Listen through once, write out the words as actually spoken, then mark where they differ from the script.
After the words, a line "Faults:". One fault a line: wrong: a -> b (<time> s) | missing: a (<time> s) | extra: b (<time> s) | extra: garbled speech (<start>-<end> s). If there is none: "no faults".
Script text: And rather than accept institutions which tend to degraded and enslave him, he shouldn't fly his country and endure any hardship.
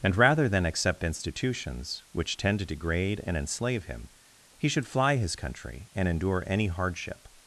And rather than accept institutions which tend to degrade and enslave him, he should fly his country and endure any hardship.
Faults:
wrong: degraded -> degrade (2.6 s)
wrong: shouldn't -> should (4.7 s)